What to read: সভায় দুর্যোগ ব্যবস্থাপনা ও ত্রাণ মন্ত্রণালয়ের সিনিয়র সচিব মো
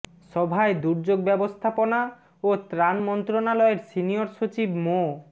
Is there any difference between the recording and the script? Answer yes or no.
no